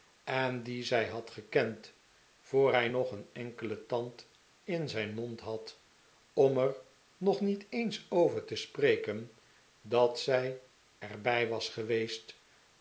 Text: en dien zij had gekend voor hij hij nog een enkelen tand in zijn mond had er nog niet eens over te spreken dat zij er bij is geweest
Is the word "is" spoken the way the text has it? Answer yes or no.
no